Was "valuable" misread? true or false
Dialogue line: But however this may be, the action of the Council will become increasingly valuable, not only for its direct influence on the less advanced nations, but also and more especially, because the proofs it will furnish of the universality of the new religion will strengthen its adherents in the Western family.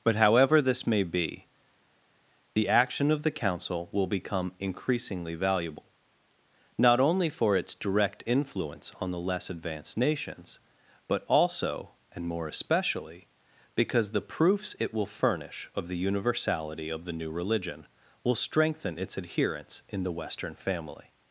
false